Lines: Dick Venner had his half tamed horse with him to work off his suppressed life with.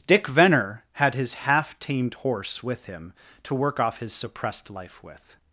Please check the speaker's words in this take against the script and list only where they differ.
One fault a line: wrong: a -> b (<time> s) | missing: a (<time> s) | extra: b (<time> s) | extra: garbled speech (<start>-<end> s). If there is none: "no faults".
no faults